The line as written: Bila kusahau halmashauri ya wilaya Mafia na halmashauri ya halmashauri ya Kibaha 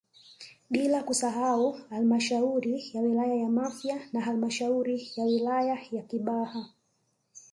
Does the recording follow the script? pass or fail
fail